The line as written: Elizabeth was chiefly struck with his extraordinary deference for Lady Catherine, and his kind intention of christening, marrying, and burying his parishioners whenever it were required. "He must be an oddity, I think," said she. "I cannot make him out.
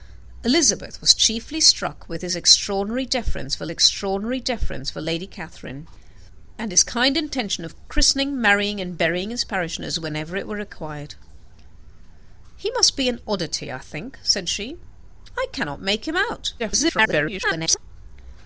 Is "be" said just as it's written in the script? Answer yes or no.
yes